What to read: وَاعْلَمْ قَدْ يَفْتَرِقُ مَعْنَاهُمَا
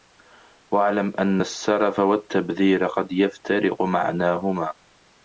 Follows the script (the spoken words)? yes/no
no